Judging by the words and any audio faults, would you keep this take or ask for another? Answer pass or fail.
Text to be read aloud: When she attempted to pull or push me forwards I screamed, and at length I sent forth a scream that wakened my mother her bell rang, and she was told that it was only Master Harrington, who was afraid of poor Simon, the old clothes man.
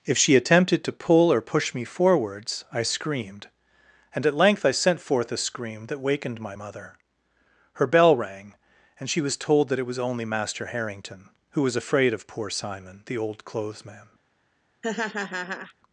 fail